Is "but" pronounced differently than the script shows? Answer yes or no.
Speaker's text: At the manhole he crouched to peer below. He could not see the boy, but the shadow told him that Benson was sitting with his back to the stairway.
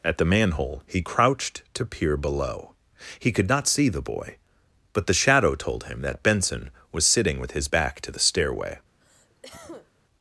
no